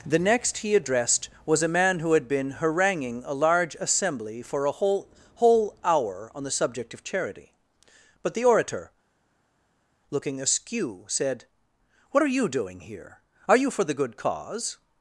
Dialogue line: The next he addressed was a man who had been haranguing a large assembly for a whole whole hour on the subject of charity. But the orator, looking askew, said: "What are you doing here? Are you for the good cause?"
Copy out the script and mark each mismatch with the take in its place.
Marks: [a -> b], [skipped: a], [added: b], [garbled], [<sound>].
The next he addressed was a man who had been haranguing a large assembly for a whole whole hour on the subject of charity. But the orator, looking askew, said: "What are you doing here? Are you for the good cause?"